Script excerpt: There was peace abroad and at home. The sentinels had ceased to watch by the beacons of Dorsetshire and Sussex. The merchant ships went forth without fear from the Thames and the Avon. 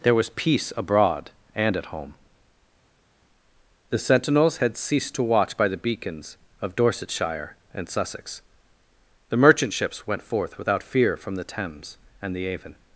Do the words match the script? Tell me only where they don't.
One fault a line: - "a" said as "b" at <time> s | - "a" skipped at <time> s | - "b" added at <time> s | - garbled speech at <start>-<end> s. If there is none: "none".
none